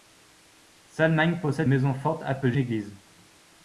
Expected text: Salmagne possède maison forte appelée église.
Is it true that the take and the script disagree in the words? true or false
false